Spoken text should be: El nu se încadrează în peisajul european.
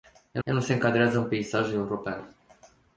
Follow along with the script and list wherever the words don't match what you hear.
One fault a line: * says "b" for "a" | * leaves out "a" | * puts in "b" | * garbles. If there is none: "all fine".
* puts in "el"